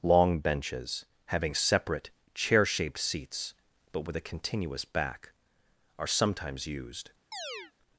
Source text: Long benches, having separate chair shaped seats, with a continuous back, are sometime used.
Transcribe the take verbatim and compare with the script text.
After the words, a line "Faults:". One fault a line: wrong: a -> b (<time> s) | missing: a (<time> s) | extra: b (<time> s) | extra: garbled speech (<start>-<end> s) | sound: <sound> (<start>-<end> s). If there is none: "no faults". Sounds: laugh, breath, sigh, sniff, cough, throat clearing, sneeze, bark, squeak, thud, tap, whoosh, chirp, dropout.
Long benches, having separate chair shaped seats, but with a continuous back, are sometimes used.
Faults:
extra: but (3.9 s)
wrong: sometime -> sometimes (6.1 s)
sound: chirp (7.3-7.7 s)